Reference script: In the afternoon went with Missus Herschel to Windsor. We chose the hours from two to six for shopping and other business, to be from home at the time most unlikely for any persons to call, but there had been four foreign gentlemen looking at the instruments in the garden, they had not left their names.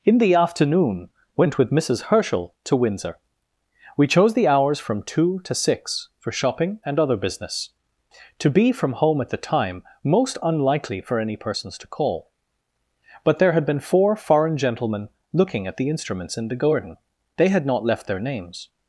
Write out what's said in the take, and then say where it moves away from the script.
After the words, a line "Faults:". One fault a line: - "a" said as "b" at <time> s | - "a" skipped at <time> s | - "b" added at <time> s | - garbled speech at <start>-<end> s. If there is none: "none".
In the afternoon went with Missus Herschel to Windsor. We chose the hours from two to six for shopping and other business, to be from home at the time most unlikely for any persons to call, but there had been four foreign gentlemen looking at the instruments in the garden, they had not left their names.
Faults:
none